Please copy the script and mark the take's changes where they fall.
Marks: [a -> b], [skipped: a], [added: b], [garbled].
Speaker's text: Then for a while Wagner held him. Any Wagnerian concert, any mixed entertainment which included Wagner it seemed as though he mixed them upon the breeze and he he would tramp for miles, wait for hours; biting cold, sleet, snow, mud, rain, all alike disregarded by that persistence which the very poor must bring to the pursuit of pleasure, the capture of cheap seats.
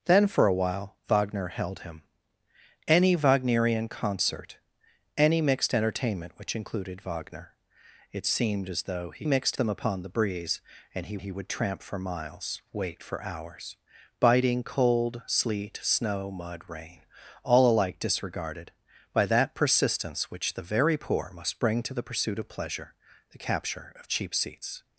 Then for a while Wagner held him. Any Wagnerian concert, any mixed entertainment which included Wagner it seemed as though he mixed them upon the breeze and he he would tramp for miles, wait for hours; biting cold, sleet, snow, mud, rain, all alike disregarded by that persistence which the very poor must bring to the pursuit of pleasure, the capture of cheap seats.